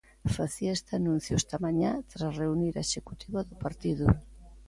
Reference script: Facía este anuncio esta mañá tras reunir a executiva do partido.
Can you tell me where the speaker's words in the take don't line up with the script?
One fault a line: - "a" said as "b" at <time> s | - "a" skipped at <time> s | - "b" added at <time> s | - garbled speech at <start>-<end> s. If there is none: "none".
none